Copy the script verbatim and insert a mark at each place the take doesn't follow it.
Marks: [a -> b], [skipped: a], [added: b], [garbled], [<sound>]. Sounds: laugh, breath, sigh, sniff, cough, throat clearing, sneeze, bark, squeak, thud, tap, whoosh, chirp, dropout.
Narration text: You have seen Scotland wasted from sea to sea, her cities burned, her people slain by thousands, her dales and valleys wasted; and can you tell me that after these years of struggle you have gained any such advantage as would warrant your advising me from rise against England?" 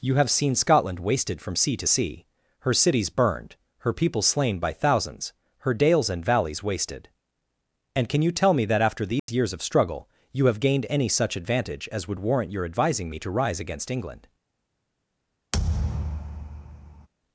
You have seen Scotland wasted from sea to sea, her cities burned, her people slain by thousands, her dales and valleys wasted; and can you tell me that after these [dropout] years of struggle you have gained any such advantage as would warrant your advising me [from -> to] rise against England?" [thud]